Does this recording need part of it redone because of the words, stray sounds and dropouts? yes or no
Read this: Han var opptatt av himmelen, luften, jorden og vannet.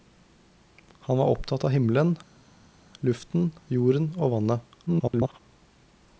yes